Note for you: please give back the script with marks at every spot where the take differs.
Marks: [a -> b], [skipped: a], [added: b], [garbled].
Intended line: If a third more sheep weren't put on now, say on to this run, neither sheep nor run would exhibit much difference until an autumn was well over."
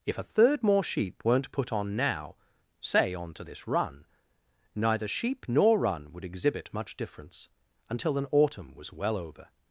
If a third more sheep weren't put on now, say on to this run, neither sheep nor run would exhibit much difference until an autumn was well over."